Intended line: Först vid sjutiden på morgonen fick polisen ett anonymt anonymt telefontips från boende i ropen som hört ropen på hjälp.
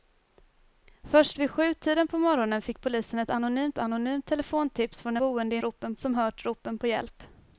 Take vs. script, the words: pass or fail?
pass